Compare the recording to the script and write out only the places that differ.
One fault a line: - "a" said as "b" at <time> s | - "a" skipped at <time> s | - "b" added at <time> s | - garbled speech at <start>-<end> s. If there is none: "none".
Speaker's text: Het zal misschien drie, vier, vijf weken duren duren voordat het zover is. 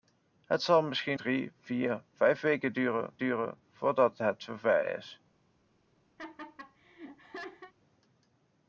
none